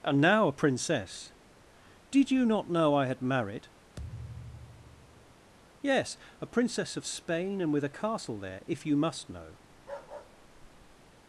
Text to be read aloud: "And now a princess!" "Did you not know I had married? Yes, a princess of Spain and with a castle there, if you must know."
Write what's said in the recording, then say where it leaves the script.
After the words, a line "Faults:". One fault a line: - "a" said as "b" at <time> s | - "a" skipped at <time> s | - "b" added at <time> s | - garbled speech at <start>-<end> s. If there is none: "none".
"And now a princess!" "Did you not know I had married? Yes, a princess of Spain and with a castle there, if you must know."
Faults:
none